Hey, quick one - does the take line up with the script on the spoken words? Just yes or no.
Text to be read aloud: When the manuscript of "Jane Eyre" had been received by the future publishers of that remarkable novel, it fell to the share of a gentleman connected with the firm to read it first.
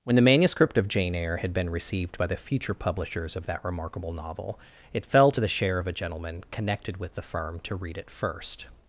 yes